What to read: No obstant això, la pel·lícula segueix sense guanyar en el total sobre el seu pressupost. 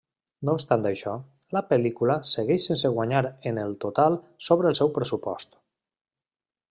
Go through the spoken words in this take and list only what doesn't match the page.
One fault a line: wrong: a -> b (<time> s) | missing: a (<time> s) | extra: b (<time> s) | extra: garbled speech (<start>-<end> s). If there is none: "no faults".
no faults